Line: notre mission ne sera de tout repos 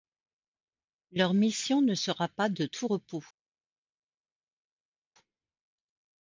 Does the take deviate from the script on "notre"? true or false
true